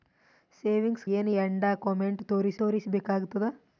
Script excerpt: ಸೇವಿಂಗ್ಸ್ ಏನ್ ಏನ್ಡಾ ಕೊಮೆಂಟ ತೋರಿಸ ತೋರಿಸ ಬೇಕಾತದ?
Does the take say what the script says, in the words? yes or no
yes